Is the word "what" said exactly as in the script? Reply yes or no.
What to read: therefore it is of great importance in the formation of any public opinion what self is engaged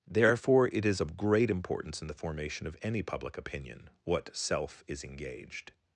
yes